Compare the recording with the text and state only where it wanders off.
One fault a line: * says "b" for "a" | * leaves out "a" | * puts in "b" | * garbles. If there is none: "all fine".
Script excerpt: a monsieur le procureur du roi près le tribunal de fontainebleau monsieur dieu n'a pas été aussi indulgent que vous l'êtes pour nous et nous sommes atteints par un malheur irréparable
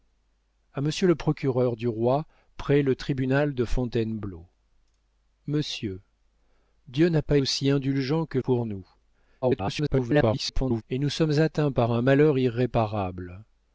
* leaves out "été"
* leaves out "vous l'êtes"
* garbles